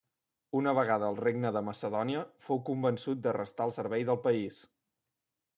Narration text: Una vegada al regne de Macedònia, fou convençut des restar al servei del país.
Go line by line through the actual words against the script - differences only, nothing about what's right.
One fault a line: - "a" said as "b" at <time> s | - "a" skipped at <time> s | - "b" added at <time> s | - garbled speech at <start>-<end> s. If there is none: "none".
- "des" said as "de" at 3.3 s